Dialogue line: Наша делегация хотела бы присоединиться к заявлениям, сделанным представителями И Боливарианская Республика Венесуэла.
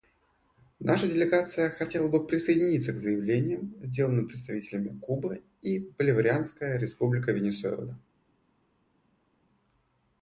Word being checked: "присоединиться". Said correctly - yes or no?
yes